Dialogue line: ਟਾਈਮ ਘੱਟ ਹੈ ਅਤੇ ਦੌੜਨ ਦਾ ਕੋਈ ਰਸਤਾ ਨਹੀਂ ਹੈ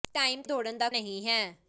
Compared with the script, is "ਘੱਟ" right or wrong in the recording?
wrong